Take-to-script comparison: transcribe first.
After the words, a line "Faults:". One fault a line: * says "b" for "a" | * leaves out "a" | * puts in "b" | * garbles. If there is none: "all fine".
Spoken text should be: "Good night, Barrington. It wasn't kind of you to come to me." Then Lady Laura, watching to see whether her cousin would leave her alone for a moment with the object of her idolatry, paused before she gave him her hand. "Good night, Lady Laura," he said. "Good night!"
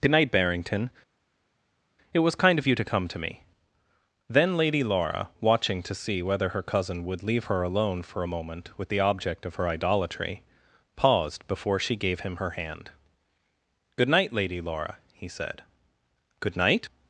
"Good night, Barrington. It was kind of you to come to me." Then Lady Laura, watching to see whether her cousin would leave her alone for a moment with the object of her idolatry, paused before she gave him her hand. "Good night, Lady Laura," he said. "Good night!"
Faults:
* says "was" for "wasn't"